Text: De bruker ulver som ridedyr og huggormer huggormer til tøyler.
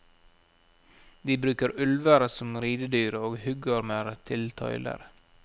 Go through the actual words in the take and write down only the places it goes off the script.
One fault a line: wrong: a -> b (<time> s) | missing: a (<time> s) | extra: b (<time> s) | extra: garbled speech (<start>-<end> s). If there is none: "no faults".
missing: huggormer (4.1 s)